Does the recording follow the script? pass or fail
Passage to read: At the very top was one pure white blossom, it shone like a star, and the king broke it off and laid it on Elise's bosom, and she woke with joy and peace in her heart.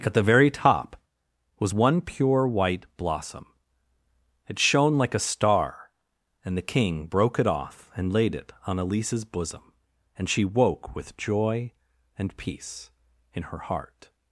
pass